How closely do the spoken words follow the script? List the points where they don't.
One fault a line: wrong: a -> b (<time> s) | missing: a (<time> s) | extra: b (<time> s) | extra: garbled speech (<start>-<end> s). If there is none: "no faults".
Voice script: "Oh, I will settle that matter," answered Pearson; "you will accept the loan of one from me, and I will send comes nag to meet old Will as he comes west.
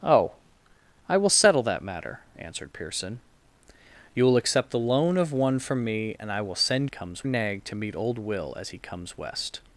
no faults